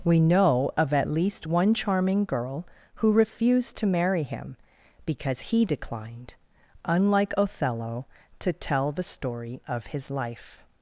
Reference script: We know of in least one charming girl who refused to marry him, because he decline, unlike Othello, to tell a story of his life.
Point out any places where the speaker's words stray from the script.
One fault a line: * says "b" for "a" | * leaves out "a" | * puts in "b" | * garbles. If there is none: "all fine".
* says "at" for "in"
* says "declined" for "decline"
* says "the" for "a"